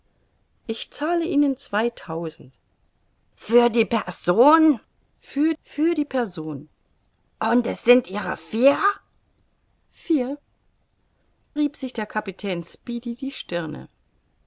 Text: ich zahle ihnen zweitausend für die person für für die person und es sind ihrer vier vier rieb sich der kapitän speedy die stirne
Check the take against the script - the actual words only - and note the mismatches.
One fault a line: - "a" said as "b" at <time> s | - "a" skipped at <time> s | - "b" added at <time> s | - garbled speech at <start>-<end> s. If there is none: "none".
none